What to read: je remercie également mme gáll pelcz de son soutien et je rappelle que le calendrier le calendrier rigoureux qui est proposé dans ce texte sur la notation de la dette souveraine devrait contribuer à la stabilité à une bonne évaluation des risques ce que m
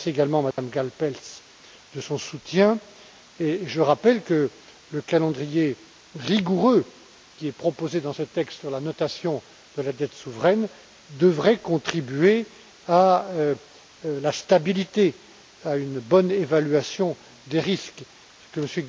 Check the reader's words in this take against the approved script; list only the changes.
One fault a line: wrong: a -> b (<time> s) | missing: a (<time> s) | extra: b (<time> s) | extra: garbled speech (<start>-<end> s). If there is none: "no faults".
missing: le calendrier (5.8 s)